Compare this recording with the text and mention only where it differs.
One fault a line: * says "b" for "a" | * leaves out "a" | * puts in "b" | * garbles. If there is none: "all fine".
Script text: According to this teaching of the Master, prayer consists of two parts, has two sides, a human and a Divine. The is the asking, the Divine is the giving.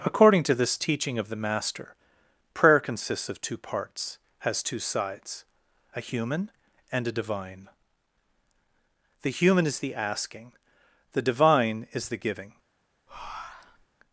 * puts in "human"